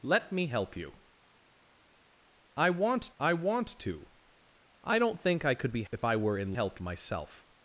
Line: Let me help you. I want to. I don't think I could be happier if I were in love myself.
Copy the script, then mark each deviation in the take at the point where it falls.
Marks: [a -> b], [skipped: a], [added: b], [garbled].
Let me help you. I want [added: I want] to. I don't think I could be [skipped: happier] if I were in [love -> help] myself.